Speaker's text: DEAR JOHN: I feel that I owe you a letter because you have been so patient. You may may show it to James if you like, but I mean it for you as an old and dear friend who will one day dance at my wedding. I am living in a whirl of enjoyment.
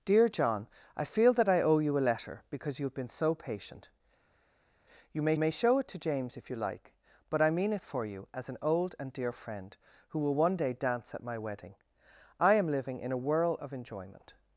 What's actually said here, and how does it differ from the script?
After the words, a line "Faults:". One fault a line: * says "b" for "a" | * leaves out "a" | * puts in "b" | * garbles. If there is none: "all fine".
DEAR JOHN: I feel that I owe you a letter because you have been so patient. You may may show it to James if you like, but I mean it for you as an old and dear friend who will one day dance at my wedding. I am living in a whirl of enjoyment.
Faults:
all fine